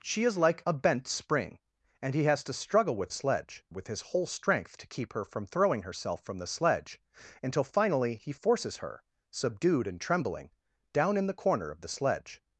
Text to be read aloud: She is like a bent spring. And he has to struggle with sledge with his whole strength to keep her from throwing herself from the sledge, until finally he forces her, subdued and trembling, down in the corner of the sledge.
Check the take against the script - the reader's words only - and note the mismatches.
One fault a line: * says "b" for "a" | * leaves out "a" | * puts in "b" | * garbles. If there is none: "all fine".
all fine